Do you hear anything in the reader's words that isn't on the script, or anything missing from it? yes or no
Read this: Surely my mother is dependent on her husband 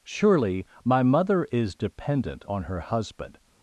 no